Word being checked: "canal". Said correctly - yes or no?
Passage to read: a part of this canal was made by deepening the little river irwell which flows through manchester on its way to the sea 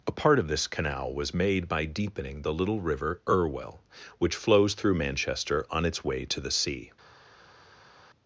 yes